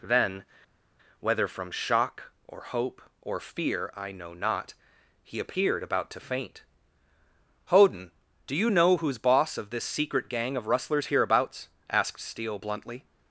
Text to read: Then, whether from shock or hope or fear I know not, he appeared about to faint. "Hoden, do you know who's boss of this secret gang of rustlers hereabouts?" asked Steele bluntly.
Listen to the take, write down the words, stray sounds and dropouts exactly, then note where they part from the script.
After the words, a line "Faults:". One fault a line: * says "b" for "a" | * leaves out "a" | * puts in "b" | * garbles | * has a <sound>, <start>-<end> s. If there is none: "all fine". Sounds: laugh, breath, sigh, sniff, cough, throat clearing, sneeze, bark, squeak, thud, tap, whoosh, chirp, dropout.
Then, whether from shock or hope or fear I know not, he appeared about to faint. "Hoden, do you know who's boss of this secret gang of rustlers hereabouts?" asked Steele bluntly.
Faults:
all fine